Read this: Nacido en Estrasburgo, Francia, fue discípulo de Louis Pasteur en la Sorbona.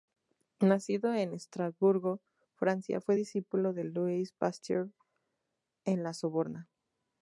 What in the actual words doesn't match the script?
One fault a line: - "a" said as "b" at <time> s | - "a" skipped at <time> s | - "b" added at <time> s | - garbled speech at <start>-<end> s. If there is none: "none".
none